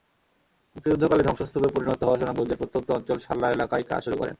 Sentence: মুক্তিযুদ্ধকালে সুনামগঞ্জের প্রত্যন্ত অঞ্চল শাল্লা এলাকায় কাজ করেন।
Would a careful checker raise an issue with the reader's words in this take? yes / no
yes